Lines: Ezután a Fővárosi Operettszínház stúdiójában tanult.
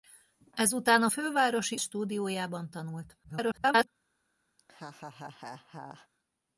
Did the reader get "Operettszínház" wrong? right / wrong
wrong